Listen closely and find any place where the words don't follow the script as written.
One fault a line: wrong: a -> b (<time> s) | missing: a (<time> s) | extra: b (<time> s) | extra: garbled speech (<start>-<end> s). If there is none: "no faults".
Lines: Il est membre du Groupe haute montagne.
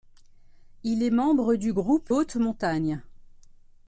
no faults